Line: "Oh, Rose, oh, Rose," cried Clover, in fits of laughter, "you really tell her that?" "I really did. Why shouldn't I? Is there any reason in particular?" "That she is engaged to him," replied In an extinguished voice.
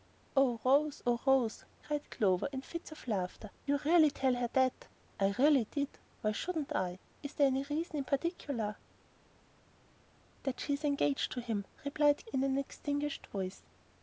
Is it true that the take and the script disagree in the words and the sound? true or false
false